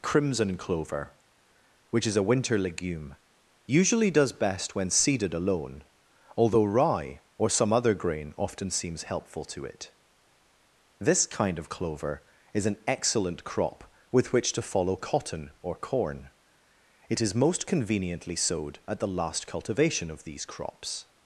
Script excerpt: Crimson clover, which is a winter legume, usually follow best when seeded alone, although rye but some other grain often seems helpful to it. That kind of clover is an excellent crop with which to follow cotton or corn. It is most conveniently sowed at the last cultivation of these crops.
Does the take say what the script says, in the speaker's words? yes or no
no